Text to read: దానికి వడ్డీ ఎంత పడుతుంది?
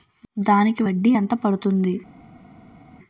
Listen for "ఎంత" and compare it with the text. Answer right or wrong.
right